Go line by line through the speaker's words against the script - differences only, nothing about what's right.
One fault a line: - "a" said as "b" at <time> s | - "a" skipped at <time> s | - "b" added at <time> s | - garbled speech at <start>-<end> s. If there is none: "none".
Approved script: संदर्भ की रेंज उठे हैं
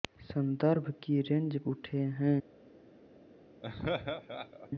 none